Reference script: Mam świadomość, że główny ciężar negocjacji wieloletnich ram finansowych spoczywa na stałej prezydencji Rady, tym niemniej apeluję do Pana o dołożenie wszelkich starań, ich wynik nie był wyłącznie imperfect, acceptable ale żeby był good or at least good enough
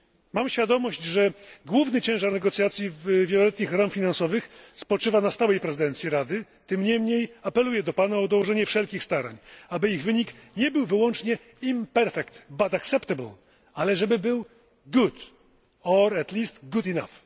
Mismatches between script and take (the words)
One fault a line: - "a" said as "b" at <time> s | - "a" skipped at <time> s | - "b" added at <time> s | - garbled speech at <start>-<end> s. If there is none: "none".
- "aby" added at 9.7 s
- "but" added at 12.5 s